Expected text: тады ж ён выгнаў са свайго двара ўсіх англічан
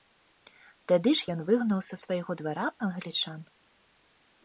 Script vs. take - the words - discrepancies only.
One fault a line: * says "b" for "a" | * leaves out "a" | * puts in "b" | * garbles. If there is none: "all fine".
* leaves out "ўсіх"